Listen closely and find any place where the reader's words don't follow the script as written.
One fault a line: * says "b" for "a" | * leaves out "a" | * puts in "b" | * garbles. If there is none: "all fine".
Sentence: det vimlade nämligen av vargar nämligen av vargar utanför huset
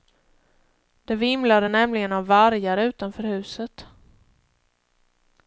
* leaves out "nämligen av vargar"